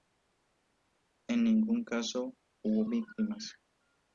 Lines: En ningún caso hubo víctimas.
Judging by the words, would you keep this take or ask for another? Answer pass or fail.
pass